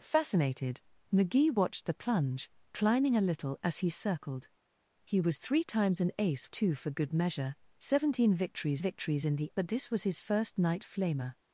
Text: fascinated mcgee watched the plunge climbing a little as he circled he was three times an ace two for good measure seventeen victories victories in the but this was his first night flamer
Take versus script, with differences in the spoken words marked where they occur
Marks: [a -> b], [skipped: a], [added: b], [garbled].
fascinated mcgee watched the plunge climbing a little as he circled he was three times an ace two for good measure seventeen victories victories in the but this was his first night flamer